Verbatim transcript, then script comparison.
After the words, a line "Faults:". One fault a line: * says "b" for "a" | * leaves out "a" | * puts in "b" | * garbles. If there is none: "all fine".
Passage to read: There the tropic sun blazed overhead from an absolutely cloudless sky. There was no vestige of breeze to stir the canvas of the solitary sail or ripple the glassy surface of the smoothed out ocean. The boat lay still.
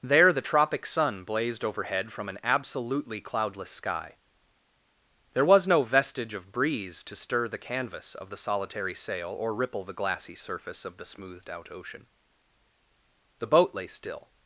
There the tropic sun blazed overhead from an absolutely cloudless sky. There was no vestige of breeze to stir the canvas of the solitary sail or ripple the glassy surface of the smoothed out ocean. The boat lay still.
Faults:
all fine